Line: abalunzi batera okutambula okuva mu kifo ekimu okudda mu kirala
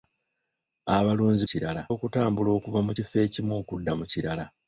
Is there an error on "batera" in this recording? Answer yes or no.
yes